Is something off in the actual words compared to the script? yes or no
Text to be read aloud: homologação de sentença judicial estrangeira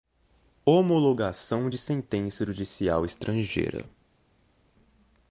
no